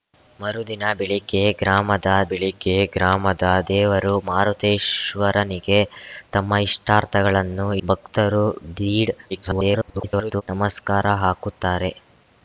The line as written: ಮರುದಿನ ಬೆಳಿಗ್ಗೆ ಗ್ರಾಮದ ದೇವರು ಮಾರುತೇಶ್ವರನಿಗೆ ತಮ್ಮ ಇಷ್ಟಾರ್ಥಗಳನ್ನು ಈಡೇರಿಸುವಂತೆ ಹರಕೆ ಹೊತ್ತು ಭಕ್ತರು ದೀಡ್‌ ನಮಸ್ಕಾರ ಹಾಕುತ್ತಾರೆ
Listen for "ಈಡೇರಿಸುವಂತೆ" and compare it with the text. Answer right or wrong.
wrong